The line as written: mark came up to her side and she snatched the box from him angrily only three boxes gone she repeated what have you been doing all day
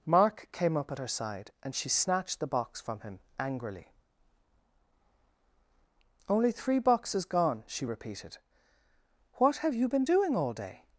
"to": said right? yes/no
no